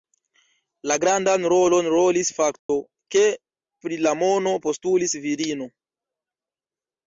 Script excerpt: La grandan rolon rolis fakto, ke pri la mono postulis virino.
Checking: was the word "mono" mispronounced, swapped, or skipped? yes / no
no